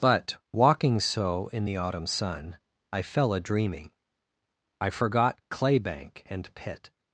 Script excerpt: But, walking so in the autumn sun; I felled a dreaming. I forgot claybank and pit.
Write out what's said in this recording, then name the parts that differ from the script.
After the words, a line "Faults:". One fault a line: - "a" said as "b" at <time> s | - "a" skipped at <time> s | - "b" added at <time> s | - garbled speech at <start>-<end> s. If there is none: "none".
But, walking so in the autumn sun; I fell a dreaming. I forgot claybank and pit.
Faults:
- "felled" said as "fell" at 3.0 s